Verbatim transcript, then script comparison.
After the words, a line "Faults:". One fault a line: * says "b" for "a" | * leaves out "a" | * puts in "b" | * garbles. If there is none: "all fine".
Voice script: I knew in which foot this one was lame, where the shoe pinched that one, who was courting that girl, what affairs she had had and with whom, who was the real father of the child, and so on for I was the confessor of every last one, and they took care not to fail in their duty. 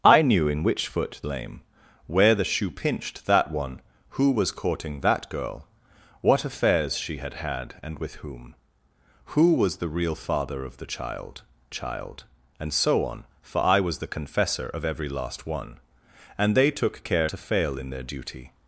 I knew in which foot lame, where the shoe pinched that one, who was courting that girl, what affairs she had had and with whom, who was the real father of the child child, and so on for I was the confessor of every last one, and they took care to fail in their duty.
Faults:
* leaves out "this one was"
* puts in "child"
* leaves out "not"